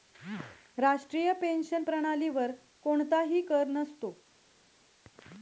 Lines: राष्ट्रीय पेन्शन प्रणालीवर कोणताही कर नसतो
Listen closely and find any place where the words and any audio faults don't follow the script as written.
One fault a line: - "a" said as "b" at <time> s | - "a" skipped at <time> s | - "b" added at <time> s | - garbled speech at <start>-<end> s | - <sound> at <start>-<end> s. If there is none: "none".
none